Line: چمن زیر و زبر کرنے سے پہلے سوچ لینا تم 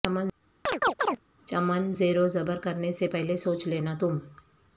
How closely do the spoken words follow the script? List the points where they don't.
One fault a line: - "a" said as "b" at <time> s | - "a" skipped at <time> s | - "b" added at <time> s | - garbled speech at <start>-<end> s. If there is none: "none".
none